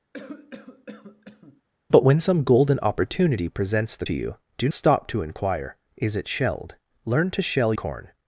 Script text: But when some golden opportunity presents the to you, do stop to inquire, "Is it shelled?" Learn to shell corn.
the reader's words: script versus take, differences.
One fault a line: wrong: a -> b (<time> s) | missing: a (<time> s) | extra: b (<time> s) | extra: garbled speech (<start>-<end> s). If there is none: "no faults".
no faults